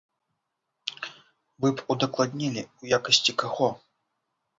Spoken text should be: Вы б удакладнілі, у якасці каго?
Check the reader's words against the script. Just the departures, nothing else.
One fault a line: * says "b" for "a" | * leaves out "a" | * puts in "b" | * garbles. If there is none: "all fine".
all fine